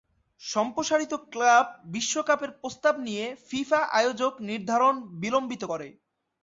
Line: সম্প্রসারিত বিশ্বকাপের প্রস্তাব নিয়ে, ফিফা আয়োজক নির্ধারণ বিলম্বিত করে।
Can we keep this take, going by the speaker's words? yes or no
no